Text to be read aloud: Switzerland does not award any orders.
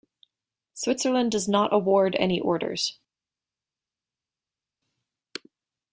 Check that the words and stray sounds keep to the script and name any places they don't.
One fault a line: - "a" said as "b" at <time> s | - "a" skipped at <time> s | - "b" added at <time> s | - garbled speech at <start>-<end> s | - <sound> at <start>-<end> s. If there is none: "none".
none